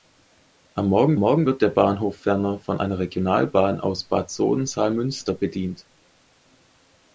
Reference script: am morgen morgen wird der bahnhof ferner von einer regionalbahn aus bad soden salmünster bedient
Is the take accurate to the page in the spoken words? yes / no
yes